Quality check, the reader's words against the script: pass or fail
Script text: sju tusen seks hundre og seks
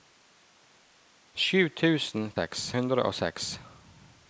pass